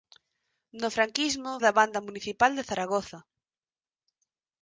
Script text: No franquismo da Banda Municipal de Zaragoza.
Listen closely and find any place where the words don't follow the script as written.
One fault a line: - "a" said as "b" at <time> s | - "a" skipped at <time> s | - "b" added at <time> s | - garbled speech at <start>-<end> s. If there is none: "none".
none